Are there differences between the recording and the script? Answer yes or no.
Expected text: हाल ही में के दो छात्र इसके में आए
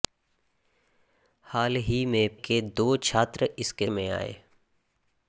no